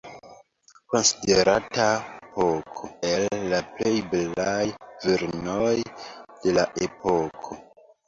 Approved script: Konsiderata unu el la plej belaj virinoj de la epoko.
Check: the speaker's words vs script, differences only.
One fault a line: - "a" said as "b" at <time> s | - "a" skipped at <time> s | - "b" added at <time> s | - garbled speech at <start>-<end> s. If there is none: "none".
- "unu" said as "epoko" at 2.2 s